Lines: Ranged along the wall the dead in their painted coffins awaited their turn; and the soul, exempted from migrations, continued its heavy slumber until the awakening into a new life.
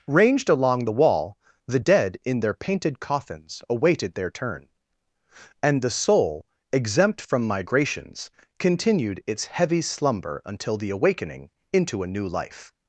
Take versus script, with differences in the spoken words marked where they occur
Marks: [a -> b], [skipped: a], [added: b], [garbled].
Ranged along the wall the dead in their painted coffins awaited their turn; and the soul, [exempted -> exempt] from migrations, continued its heavy slumber until the awakening into a new life.